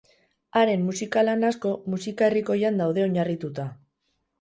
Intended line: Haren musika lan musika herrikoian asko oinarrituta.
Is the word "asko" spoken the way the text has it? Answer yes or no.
no